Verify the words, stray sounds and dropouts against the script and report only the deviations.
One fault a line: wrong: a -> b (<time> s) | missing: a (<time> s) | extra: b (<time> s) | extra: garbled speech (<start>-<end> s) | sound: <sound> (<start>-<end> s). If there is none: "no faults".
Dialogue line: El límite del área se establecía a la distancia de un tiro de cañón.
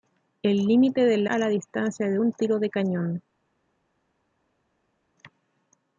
missing: área se establecía (1.3 s)